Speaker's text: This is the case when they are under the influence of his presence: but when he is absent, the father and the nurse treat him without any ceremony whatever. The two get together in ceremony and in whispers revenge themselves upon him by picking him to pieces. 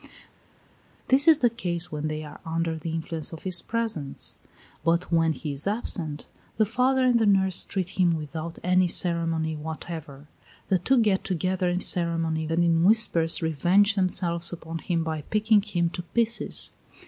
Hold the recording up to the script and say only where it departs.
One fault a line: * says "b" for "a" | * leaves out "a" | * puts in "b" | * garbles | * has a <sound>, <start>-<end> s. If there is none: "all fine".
all fine